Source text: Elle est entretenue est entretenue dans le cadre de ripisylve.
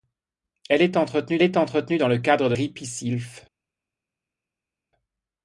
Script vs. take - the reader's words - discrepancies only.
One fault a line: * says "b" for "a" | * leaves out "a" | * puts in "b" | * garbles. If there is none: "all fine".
all fine